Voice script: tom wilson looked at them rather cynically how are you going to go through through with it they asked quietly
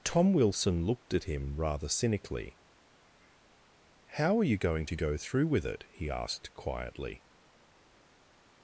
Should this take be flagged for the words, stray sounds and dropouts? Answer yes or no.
yes